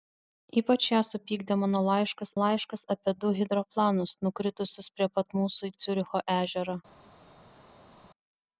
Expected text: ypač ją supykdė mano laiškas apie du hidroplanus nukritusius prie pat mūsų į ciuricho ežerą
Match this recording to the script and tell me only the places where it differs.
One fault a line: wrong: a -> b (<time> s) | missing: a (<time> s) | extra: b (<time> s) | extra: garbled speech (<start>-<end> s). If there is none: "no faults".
extra: laiškas (2.4 s)